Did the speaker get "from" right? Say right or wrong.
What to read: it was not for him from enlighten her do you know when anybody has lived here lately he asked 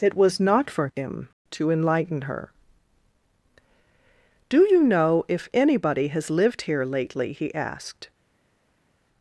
wrong